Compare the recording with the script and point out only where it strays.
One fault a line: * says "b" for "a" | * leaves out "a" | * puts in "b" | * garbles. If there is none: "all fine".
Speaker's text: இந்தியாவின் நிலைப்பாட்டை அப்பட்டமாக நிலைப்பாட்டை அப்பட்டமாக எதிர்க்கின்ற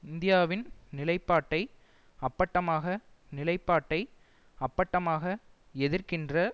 all fine